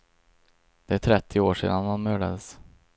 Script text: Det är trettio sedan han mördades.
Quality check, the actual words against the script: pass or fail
fail